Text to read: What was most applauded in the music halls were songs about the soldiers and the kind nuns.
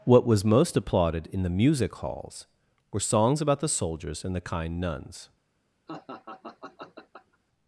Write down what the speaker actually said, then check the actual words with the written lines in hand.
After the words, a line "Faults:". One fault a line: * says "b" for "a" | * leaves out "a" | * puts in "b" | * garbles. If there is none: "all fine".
What was most applauded in the music halls were songs about the soldiers and the kind nuns.
Faults:
all fine